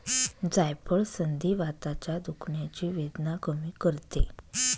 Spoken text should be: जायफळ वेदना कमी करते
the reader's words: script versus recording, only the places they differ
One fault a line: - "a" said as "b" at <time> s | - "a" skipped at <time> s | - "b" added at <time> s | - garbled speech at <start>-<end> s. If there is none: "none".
- "संधिवाताच्या दुखण्याची" added at 1.1 s